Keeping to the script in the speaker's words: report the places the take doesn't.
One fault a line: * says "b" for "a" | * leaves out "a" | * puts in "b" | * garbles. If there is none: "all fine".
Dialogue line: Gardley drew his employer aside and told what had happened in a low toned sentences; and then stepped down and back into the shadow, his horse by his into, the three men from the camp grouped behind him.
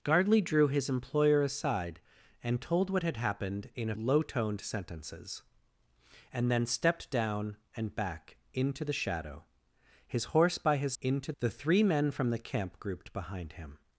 all fine